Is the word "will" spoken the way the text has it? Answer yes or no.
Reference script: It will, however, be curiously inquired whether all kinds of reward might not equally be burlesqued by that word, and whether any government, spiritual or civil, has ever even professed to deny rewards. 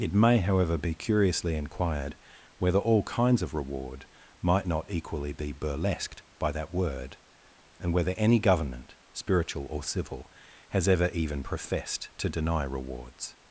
no